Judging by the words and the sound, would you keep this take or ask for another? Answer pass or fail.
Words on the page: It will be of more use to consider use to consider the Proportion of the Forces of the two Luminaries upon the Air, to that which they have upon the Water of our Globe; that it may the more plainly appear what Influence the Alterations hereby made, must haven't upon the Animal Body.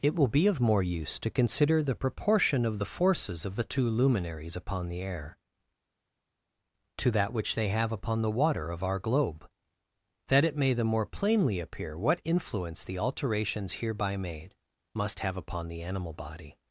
fail